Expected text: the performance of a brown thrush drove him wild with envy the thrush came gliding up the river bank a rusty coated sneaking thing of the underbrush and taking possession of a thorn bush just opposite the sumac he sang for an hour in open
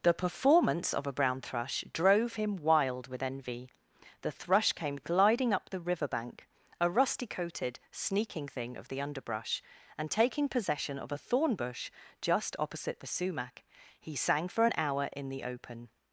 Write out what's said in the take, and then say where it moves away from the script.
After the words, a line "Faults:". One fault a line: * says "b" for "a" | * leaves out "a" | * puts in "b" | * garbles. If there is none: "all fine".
the performance of a brown thrush drove him wild with envy the thrush came gliding up the river bank a rusty coated sneaking thing of the underbrush and taking possession of a thorn bush just opposite the sumac he sang for an hour in the open
Faults:
* puts in "the"